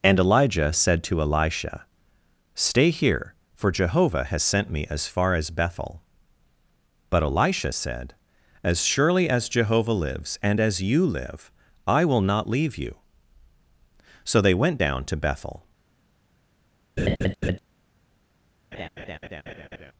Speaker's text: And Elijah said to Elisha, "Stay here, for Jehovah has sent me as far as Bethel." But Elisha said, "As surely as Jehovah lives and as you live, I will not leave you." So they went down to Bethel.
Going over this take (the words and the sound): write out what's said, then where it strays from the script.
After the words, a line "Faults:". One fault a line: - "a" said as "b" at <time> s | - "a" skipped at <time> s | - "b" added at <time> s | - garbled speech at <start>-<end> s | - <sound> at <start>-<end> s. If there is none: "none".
And Elijah said to Elisha, "Stay here, for Jehovah has sent me as far as Bethel." But Elisha said, "As surely as Jehovah lives and as you live, I will not leave you." So they went down to Bethel.
Faults:
- laugh at 17.0-17.6 s
- laugh at 18.7-19.9 s